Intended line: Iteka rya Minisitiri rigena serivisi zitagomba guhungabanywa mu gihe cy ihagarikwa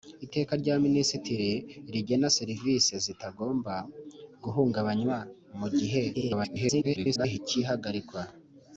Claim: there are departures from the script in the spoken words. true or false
true